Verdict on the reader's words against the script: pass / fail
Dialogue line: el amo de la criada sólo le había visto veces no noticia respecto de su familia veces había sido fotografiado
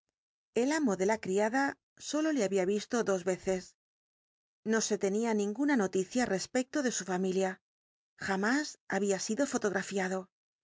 fail